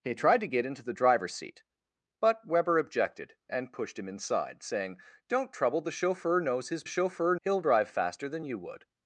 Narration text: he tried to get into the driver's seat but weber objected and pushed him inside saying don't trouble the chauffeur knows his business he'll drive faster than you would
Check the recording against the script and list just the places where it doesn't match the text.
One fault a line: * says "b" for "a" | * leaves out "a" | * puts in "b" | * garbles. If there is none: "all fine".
* says "chauffeur" for "business"